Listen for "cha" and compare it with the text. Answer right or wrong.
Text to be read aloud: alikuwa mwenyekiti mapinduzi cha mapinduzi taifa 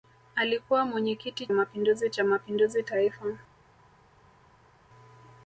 right